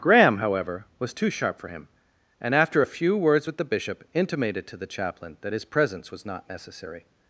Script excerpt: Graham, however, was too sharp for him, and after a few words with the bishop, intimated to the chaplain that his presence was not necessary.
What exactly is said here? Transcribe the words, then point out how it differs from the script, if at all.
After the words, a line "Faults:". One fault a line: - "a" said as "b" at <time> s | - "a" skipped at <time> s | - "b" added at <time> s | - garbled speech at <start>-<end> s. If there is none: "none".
Graham, however, was too sharp for him, and after a few words with the bishop, intimated to the chaplain that his presence was not necessary.
Faults:
none